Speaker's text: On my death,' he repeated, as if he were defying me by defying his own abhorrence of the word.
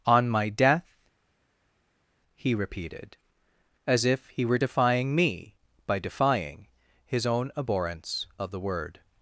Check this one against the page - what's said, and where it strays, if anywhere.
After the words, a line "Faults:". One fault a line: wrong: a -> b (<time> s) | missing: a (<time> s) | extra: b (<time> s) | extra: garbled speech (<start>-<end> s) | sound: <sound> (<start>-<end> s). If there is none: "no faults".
On my death,' he repeated, as if he were defying me by defying his own abhorrence of the word.
Faults:
no faults